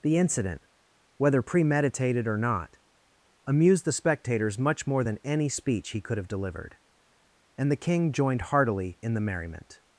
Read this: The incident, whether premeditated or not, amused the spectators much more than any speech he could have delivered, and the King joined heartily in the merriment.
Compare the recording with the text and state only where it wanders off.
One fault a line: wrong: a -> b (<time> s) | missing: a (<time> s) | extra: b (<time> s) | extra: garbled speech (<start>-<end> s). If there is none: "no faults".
no faults